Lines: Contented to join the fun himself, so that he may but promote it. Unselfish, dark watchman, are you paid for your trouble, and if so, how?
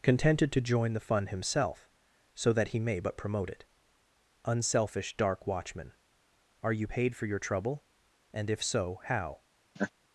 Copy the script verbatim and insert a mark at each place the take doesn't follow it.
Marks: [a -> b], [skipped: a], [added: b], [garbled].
Contented to join the fun himself, so that he may but promote it. Unselfish, dark watchman, are you paid for your trouble, and if so, how?